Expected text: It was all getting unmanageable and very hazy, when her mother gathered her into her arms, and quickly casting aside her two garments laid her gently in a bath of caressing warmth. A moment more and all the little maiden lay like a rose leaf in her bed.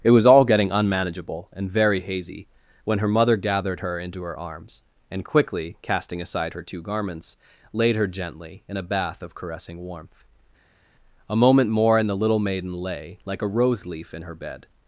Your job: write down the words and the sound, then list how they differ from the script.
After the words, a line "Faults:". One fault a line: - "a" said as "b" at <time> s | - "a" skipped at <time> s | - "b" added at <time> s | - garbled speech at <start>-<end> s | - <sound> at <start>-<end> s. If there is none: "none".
It was all getting unmanageable and very hazy, when her mother gathered her into her arms, and quickly casting aside her two garments laid her gently in a bath of caressing warmth. A moment more and the little maiden lay like a rose leaf in her bed.
Faults:
- "all" skipped at 12.1 s